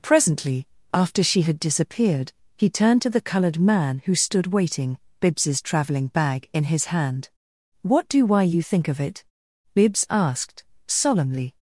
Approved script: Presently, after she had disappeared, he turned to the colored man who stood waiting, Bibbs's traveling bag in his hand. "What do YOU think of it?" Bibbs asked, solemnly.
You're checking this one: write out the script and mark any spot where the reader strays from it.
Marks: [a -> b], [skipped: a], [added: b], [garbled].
Presently, after she had disappeared, he turned to the colored man who stood waiting, Bibbs's traveling bag in his hand. "What do [added: why] YOU think of it?" Bibbs asked, solemnly.